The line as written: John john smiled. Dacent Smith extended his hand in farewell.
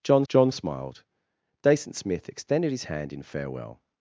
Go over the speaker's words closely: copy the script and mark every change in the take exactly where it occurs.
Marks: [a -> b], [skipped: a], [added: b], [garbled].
John john smiled. Dacent Smith extended his hand in farewell.